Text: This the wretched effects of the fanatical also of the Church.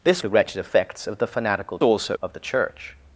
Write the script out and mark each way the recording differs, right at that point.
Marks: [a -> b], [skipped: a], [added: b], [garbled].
This the wretched effects of the fanatical also of the Church.